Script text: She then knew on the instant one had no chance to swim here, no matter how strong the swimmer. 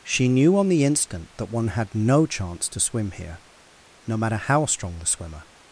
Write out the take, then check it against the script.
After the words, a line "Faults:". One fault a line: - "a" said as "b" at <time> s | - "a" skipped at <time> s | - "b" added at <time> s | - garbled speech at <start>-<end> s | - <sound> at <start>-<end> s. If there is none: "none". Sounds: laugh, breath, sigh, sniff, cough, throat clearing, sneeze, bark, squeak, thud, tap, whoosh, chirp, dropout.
She knew on the instant that one had no chance to swim here, no matter how strong the swimmer.
Faults:
- "then" skipped at 0.3 s
- "that" added at 1.4 s